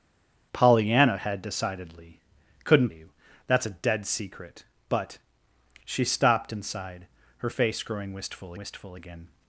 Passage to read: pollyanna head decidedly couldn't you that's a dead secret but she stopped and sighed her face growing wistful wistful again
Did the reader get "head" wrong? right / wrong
right